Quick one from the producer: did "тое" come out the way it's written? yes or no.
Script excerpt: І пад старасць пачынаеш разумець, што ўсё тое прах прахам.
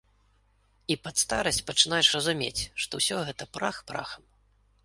no